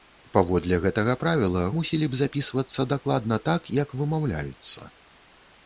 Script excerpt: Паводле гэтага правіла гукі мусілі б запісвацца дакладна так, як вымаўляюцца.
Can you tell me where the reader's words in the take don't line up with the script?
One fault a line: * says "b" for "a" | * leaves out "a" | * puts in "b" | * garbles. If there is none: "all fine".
* leaves out "гукі"